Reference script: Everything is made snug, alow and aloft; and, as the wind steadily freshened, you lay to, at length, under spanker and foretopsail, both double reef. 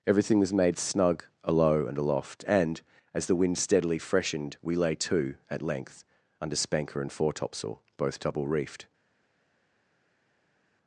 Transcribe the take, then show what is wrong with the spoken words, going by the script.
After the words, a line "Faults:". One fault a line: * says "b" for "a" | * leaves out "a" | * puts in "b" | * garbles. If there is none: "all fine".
Everything was made snug, alow and aloft; and, as the wind steadily freshened, we lay to, at length, under spanker and foretopsail, both double reefed.
Faults:
* says "was" for "is"
* says "we" for "you"
* says "reefed" for "reef"